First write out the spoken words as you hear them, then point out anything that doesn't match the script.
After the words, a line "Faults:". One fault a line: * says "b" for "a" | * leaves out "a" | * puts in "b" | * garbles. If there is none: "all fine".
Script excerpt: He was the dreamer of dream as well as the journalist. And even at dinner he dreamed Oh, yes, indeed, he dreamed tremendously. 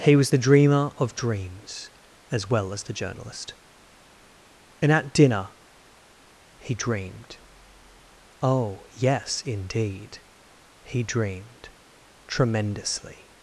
He was the dreamer of dreams as well as the journalist. And at dinner he dreamed Oh, yes, indeed, he dreamed tremendously.
Faults:
* says "dreams" for "dream"
* leaves out "even"